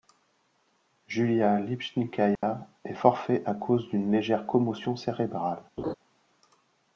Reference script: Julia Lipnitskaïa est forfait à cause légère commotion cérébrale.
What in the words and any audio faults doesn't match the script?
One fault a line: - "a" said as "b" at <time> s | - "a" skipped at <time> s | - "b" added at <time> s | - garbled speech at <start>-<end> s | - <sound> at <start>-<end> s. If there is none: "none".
- dropout at 2.4-2.4 s
- "d'une" added at 3.9 s
- laugh at 5.8-5.9 s